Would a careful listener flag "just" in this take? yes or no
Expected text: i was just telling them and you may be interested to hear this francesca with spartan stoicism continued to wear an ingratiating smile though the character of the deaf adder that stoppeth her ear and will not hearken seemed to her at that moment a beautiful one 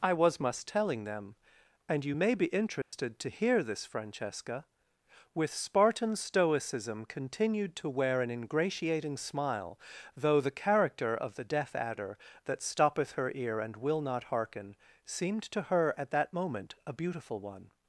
yes